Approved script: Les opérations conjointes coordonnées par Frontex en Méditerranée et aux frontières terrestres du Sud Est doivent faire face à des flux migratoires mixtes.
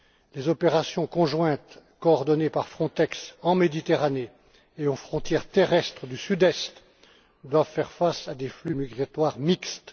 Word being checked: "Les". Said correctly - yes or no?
yes